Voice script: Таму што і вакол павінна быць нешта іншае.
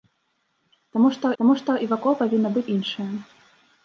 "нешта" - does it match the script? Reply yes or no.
no